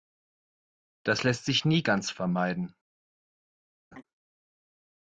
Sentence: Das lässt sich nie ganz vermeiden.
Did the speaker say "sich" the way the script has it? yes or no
yes